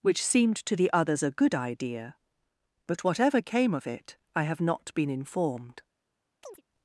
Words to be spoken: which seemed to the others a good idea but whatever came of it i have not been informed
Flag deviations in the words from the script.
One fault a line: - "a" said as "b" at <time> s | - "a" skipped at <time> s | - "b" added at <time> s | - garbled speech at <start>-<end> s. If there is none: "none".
none